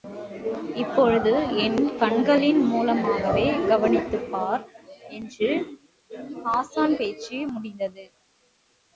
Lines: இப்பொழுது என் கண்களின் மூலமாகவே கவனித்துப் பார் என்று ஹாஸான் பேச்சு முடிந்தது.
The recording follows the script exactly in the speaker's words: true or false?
true